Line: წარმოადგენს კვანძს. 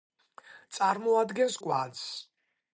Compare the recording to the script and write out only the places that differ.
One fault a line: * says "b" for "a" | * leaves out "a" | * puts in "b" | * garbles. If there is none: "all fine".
all fine